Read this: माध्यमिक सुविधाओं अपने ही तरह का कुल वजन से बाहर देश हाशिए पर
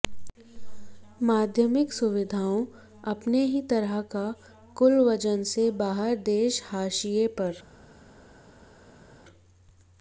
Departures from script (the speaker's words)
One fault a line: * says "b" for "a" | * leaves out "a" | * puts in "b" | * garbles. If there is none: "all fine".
all fine